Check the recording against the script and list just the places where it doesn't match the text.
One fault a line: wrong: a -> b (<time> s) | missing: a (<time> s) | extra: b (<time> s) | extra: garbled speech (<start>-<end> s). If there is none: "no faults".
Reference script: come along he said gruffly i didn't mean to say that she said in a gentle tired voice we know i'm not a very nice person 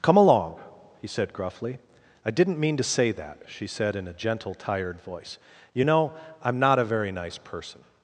wrong: we -> you (5.7 s)